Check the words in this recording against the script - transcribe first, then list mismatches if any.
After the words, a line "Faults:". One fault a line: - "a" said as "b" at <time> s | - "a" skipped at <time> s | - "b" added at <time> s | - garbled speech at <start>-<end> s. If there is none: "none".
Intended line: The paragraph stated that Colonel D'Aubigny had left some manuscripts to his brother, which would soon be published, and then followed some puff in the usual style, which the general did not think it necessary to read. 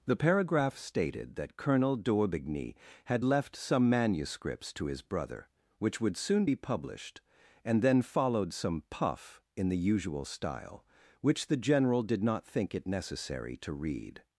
The paragraph stated that Colonel D'Aubigny had left some manuscripts to his brother, which would soon be published, and then followed some puff in the usual style, which the general did not think it necessary to read.
Faults:
none